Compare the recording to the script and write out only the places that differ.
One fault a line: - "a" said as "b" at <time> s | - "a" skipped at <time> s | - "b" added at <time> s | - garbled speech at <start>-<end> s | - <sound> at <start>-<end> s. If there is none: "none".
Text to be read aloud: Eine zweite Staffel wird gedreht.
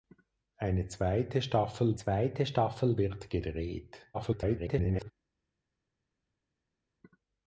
- "zweite Staffel" added at 1.9 s
- garbled speech at 4.1-5.1 s